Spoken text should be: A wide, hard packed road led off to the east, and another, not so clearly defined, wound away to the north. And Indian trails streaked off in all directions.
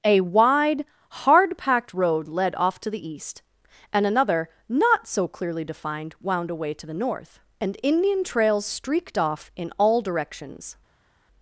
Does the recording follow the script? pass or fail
pass